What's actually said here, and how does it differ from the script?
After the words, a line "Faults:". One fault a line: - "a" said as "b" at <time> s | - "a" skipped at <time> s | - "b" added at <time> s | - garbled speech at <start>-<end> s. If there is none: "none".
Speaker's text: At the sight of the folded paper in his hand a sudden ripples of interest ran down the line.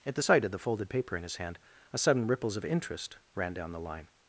At the sight of the folded paper in his hand a sudden ripples of interest ran down the line.
Faults:
none